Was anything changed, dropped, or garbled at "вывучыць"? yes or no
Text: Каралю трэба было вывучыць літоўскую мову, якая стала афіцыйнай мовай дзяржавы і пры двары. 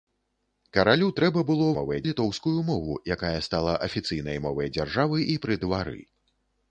yes